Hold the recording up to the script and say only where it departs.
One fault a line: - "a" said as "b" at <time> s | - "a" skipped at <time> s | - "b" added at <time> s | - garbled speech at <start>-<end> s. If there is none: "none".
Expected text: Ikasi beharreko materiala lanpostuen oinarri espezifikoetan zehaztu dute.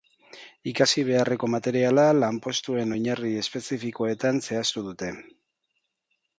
none